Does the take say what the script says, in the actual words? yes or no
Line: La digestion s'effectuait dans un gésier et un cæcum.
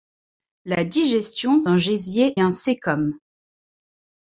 no